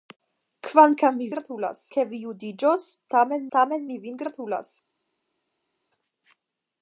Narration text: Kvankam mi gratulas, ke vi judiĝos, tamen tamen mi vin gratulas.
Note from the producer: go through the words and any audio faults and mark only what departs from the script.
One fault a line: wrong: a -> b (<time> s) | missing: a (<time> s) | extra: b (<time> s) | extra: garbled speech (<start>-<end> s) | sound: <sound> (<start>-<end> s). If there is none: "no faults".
no faults